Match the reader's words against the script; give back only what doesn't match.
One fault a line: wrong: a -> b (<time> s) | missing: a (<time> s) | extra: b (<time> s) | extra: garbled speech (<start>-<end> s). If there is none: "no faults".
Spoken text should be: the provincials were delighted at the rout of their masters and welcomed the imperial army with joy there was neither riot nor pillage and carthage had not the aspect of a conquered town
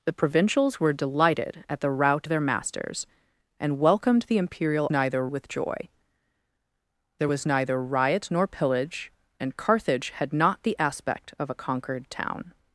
missing: of (2.3 s)
wrong: army -> neither (4.9 s)